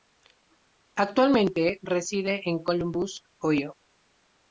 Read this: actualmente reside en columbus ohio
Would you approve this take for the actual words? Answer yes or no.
yes